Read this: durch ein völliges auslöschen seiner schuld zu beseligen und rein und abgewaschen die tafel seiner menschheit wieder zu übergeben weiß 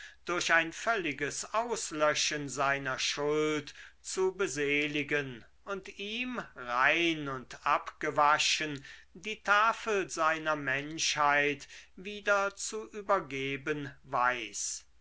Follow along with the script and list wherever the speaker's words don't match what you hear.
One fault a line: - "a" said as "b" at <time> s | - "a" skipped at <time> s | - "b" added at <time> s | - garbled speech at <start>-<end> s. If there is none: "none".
- "ihm" added at 6.0 s